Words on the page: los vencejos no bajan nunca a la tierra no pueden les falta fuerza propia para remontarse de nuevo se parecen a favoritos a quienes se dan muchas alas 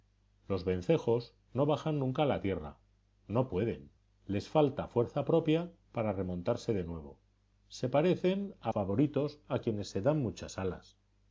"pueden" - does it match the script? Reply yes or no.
yes